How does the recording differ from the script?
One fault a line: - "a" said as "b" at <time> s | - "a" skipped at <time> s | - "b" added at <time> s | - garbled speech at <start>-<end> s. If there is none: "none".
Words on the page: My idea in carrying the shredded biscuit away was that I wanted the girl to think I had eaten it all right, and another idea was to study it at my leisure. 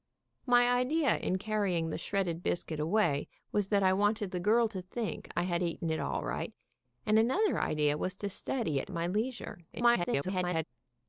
- "at" skipped at 8.9 s
- garbled speech at 9.7-10.6 s